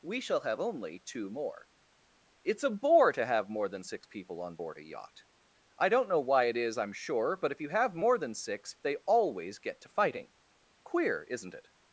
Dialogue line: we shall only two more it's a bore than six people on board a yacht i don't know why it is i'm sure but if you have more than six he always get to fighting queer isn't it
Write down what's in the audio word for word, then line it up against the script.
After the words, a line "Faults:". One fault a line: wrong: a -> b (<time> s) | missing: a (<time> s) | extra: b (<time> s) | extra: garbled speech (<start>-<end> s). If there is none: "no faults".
we shall have only two more it's a bore to have more than six people on board a yacht i don't know why it is i'm sure but if you have more than six they always get to fighting queer isn't it
Faults:
extra: have (0.4 s)
extra: to have more (3.1 s)
wrong: he -> they (8.8 s)